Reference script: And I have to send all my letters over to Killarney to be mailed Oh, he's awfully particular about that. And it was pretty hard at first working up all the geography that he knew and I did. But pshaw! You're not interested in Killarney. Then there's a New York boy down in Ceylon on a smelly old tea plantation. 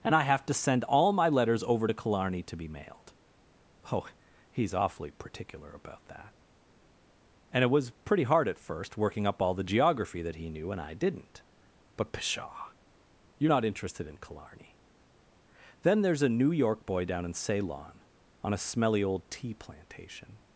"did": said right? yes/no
no